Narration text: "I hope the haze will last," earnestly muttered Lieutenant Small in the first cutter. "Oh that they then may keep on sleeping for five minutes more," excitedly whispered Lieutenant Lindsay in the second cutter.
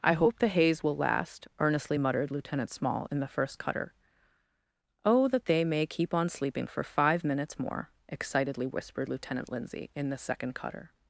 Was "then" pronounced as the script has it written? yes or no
no